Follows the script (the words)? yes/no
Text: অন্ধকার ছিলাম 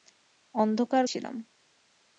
yes